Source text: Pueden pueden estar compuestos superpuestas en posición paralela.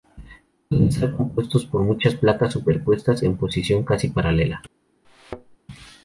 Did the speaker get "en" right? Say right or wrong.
right